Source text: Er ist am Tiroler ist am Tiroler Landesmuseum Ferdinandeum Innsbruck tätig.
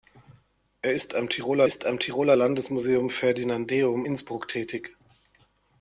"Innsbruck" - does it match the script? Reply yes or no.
yes